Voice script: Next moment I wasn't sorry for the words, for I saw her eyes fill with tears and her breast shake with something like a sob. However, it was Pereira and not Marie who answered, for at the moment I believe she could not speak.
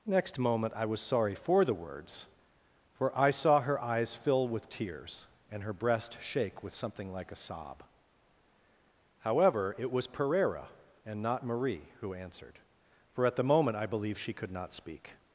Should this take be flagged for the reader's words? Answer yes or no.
yes